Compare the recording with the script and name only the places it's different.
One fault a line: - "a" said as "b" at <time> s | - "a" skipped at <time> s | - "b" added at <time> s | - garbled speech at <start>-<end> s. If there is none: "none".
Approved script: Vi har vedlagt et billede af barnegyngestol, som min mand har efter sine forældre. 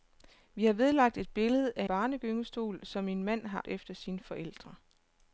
none